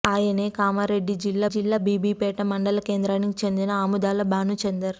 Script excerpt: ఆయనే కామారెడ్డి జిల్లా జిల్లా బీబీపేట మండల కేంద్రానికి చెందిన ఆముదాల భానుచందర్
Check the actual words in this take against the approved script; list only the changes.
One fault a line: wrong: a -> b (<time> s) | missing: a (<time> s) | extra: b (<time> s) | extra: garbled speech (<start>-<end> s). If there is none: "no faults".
no faults